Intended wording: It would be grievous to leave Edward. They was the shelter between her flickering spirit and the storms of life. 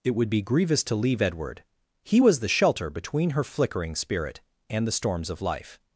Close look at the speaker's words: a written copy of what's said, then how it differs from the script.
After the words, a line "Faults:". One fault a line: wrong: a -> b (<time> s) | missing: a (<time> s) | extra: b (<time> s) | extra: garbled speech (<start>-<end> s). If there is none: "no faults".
It would be grievous to leave Edward. He was the shelter between her flickering spirit and the storms of life.
Faults:
wrong: They -> He (2.0 s)